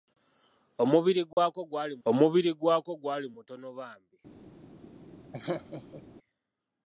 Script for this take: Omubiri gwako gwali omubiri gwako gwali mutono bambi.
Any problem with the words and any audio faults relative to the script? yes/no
yes